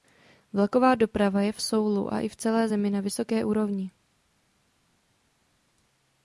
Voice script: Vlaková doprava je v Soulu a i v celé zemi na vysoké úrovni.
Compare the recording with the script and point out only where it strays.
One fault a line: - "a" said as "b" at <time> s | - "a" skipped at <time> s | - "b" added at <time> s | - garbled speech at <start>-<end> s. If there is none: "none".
none